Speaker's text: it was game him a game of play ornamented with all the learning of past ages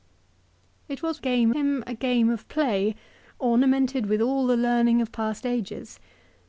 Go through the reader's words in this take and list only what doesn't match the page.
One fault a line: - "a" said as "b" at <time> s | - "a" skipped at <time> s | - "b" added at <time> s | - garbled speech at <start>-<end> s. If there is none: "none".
none